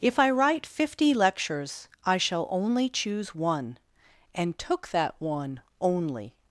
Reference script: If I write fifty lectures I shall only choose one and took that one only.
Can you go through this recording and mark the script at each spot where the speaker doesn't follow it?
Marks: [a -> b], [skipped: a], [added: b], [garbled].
If I write fifty lectures I shall only choose one and took that one only.